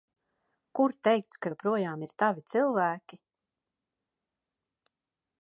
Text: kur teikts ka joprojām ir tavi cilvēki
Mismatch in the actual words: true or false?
false